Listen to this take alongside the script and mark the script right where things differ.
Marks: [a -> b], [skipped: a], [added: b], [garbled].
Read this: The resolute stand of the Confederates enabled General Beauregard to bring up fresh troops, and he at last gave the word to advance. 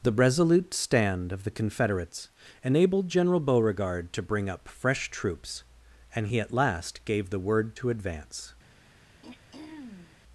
The resolute stand of the Confederates enabled General Beauregard to bring up fresh troops, and he at last gave the word to advance.